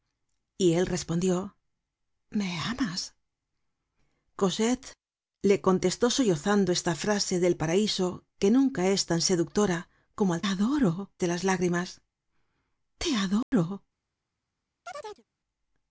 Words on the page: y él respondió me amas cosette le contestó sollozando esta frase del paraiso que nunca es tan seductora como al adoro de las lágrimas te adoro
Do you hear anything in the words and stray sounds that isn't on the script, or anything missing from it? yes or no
yes